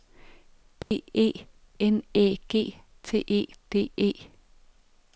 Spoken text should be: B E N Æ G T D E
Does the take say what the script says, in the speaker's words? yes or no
no